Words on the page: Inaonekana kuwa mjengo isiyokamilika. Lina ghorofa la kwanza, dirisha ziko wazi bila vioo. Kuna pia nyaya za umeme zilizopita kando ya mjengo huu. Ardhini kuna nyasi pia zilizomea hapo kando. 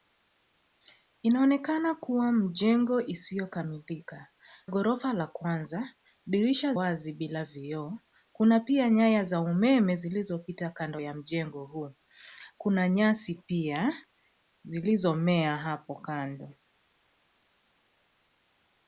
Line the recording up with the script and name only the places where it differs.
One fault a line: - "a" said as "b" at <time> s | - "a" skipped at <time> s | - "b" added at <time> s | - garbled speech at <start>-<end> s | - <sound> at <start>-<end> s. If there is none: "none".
- "Lina" skipped at 4.3 s
- "ziko" skipped at 6.7 s
- "Ardhini" skipped at 11.9 s